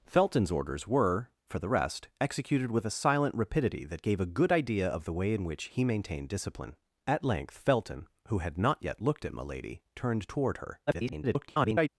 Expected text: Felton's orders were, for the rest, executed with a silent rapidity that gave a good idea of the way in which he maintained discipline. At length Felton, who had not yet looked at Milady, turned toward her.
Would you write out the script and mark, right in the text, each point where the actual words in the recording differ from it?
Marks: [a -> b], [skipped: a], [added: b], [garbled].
Felton's orders were, for the rest, executed with a silent rapidity that gave a good idea of the way in which he maintained discipline. At length Felton, who had not yet looked at Milady, turned toward her. [garbled]